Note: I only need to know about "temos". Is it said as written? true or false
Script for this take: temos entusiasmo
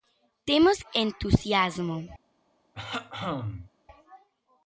true